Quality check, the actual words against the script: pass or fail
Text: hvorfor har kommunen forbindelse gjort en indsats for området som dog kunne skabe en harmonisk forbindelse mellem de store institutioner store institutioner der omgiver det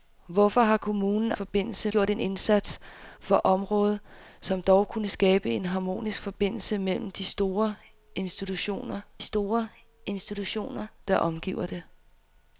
pass